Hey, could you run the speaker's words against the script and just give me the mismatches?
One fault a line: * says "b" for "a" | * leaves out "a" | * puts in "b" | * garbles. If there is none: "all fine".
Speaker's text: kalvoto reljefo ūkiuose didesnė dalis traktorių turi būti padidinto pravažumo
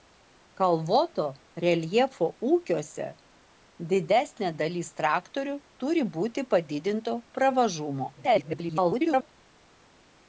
* garbles